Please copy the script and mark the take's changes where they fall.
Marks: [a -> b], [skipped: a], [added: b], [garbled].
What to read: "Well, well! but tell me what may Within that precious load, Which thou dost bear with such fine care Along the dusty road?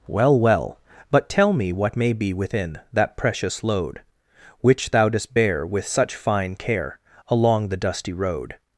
"Well, well! but tell me what may [added: be] Within that precious load, Which thou dost bear with such fine care Along the dusty road?